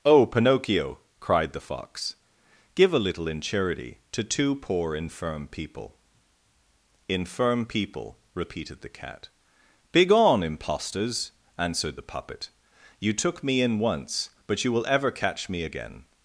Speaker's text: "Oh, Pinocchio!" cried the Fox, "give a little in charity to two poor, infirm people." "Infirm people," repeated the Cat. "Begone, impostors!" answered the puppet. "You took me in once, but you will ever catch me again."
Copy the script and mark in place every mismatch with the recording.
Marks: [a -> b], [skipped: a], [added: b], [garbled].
"Oh, Pinocchio!" cried the Fox, "give a little in charity to two poor, infirm people." "Infirm people," repeated the Cat. "Begone, impostors!" answered the puppet. "You took me in once, but you will ever catch me again."